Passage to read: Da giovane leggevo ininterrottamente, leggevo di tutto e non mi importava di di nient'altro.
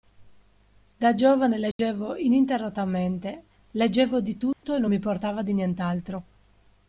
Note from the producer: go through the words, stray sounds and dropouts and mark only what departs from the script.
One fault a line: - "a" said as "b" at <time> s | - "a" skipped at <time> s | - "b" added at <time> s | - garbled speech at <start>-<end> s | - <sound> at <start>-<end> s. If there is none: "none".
- dropout at 1.7-1.8 s
- dropout at 4.5-4.6 s
- "di" skipped at 5.5 s